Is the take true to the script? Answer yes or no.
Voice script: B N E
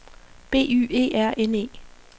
no